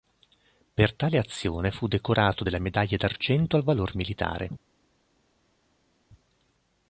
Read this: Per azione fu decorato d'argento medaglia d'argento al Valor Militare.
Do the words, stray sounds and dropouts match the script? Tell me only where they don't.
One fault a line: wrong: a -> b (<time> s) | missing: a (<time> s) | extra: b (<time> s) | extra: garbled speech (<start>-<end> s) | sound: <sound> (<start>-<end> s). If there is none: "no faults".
extra: tale (0.9 s)
wrong: d'argento -> della (2.4 s)